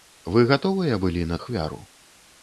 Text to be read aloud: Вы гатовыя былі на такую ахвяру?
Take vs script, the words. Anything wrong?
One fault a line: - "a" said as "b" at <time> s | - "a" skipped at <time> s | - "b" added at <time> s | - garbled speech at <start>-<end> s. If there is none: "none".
- "такую" skipped at 1.4 s